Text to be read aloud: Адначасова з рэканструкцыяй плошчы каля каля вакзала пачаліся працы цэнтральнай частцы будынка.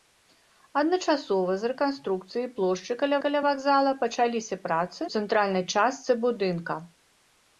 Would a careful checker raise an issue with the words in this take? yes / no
no